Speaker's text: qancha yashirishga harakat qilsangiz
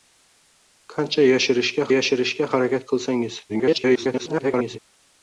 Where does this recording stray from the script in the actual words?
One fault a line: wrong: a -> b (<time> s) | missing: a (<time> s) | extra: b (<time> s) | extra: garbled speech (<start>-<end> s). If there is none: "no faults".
extra: yashirishga (1.9 s)
extra: garbled speech (3.5-4.8 s)